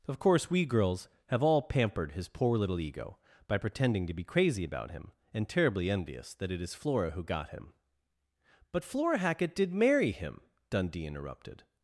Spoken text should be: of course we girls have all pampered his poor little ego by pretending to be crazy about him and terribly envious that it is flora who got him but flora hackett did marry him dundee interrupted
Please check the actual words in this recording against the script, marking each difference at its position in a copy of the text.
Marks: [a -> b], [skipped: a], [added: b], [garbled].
of course we girls have all pampered his poor little ego by pretending to be crazy about him and terribly envious that it is flora who got him but flora hackett did marry him dundee interrupted